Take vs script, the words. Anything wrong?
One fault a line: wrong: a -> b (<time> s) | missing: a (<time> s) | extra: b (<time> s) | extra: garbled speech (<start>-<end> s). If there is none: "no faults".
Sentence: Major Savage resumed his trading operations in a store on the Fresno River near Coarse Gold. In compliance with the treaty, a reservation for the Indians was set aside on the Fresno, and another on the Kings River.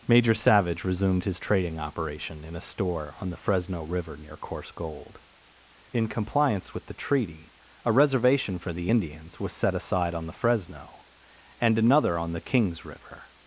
wrong: operations -> operation (1.8 s)